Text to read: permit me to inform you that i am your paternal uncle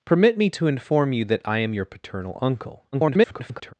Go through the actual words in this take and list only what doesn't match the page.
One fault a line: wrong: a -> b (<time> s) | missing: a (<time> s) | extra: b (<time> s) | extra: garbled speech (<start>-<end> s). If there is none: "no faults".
extra: garbled speech (2.9-3.7 s)